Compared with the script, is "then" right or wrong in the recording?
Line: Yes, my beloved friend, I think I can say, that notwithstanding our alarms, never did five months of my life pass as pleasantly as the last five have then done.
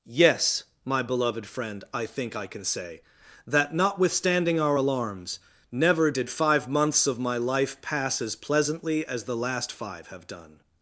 wrong